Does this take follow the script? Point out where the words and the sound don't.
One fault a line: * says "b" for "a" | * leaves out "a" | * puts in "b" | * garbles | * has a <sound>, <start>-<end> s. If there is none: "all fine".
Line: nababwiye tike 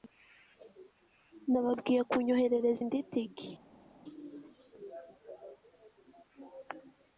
* puts in "kunyoherereza indi"